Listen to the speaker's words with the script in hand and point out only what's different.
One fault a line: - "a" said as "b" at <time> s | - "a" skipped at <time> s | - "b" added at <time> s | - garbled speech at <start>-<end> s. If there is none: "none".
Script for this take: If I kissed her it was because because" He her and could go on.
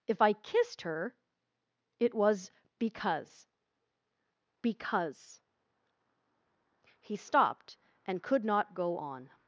- "her" said as "stopped" at 7.2 s
- "not" added at 8.4 s